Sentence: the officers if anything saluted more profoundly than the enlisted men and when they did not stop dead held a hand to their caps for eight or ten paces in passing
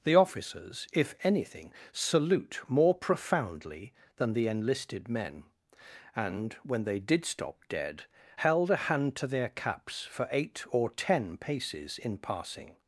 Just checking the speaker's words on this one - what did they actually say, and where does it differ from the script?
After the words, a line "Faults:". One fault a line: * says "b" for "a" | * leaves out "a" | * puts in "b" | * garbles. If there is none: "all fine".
the officers if anything salute more profoundly than the enlisted men and when they did stop dead held a hand to their caps for eight or ten paces in passing
Faults:
* says "salute" for "saluted"
* leaves out "not"